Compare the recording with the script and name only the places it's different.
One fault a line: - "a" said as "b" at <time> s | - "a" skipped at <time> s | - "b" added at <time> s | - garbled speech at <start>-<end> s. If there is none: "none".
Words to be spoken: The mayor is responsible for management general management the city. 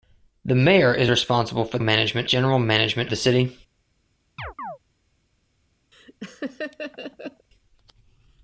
none